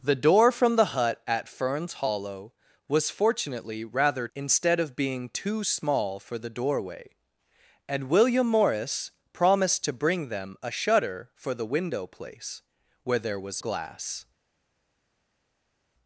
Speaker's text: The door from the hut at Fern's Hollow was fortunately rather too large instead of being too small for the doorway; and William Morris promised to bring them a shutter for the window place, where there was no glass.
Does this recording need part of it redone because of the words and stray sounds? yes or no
yes